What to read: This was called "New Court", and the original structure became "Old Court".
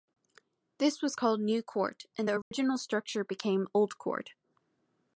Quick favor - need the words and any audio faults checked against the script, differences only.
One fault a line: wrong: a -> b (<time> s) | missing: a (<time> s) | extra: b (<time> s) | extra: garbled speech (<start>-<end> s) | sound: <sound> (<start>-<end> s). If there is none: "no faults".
sound: dropout (2.4-2.5 s)